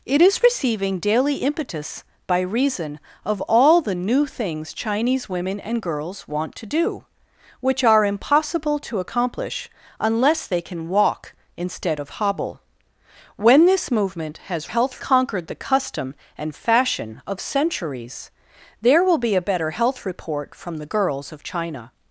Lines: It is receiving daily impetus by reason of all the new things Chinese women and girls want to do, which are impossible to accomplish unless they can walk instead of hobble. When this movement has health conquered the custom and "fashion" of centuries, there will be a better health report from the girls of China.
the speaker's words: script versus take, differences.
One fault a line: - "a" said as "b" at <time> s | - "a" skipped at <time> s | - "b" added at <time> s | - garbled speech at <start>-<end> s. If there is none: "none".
none